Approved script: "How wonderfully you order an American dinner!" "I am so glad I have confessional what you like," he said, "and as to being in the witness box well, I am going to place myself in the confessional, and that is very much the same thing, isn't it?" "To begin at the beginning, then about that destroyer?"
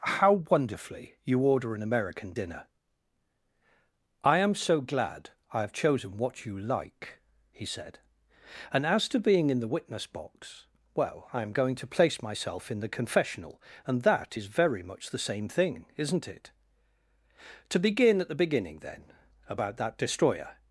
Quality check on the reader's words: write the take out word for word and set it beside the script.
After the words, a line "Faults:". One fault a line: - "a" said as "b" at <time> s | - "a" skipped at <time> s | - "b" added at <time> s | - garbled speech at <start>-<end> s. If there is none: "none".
"How wonderfully you order an American dinner!" "I am so glad I have chosen what you like," he said, "and as to being in the witness box well, I am going to place myself in the confessional, and that is very much the same thing, isn't it?" "To begin at the beginning, then about that destroyer?"
Faults:
- "confessional" said as "chosen" at 5.7 s